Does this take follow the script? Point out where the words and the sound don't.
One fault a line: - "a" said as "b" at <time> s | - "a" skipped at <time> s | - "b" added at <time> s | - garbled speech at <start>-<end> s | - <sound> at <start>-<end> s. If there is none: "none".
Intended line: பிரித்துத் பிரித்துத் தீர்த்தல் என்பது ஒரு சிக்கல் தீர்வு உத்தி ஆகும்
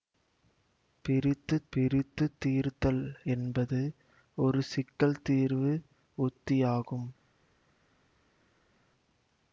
none